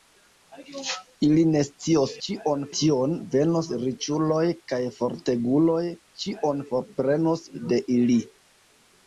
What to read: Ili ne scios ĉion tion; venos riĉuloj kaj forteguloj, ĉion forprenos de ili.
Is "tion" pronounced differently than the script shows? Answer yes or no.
no